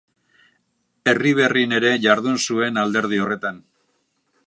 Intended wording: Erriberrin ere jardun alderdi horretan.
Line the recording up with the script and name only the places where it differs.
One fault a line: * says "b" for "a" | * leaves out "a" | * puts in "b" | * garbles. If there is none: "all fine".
* puts in "zuen"